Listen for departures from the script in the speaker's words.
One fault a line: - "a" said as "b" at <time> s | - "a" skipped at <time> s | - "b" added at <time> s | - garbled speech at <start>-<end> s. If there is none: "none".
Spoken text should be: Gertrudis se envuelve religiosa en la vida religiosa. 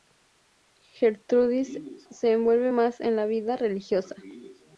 - "religiosa" said as "más" at 2.7 s